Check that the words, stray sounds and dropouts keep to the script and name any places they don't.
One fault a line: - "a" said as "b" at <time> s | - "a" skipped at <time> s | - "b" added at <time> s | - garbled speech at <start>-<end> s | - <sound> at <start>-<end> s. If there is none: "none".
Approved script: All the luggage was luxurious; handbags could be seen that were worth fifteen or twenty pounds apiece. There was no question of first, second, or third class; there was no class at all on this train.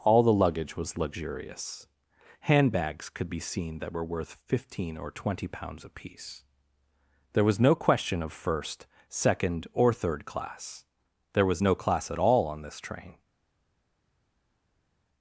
none